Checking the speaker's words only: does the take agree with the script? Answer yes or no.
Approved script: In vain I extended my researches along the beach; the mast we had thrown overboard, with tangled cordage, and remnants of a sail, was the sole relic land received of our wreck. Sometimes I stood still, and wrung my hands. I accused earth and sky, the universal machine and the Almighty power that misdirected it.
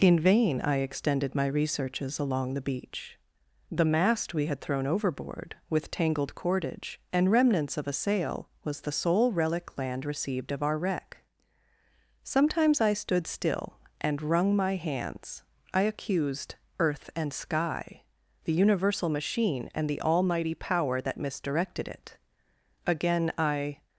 no